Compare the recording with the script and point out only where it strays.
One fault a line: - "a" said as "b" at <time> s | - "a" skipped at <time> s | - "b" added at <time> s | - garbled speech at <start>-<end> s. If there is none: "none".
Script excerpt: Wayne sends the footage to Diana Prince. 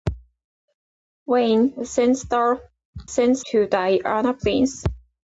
- "footage" said as "sends" at 3.1 s